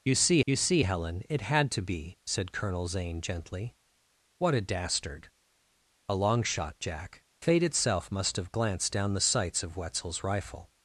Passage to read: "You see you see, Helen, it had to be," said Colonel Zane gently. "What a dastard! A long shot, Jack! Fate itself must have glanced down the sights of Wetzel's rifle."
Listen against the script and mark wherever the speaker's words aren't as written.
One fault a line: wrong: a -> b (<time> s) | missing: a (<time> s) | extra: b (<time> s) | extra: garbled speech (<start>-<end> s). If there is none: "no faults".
no faults